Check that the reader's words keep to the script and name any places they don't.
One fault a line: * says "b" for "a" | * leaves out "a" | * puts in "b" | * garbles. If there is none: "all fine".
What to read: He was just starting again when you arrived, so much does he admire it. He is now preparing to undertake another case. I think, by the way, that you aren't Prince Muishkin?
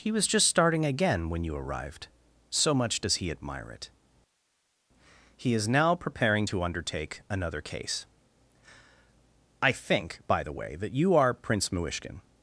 * says "are" for "aren't"